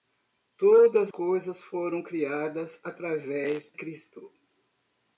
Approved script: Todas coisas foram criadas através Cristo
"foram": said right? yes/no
yes